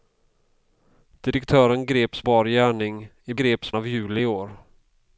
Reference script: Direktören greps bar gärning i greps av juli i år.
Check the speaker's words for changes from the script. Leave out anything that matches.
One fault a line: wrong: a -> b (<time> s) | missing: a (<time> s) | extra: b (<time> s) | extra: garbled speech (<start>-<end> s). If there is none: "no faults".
no faults